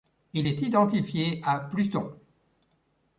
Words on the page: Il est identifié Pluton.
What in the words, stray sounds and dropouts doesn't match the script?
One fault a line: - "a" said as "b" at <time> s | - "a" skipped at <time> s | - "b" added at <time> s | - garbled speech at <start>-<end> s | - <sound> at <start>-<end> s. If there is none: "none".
- "à" added at 1.4 s